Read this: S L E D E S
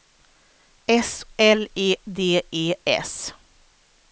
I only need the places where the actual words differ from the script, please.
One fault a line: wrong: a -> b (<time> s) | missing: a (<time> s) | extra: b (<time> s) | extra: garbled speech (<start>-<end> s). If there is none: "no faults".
no faults